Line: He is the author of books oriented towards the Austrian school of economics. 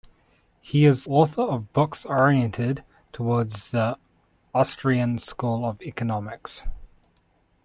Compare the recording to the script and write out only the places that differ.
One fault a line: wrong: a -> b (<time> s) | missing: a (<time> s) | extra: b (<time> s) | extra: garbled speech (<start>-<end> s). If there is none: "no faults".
missing: the (1.1 s)